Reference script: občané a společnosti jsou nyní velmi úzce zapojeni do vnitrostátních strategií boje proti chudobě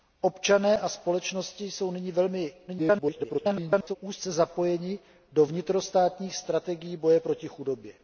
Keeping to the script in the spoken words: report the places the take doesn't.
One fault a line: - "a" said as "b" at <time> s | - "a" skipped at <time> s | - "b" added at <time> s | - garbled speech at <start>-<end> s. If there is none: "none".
- garbled speech at 2.7-4.0 s